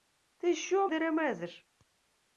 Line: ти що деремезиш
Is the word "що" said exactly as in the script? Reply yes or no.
yes